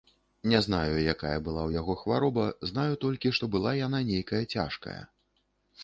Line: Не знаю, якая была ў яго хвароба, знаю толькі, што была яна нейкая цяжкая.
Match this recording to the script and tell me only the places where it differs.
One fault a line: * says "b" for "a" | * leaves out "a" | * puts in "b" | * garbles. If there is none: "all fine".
all fine